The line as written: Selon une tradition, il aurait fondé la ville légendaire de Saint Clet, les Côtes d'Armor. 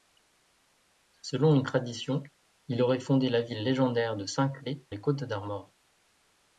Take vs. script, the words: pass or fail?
pass